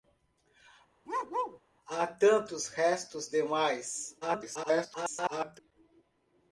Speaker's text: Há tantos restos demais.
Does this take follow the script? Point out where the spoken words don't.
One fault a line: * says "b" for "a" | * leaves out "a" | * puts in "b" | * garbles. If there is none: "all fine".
* garbles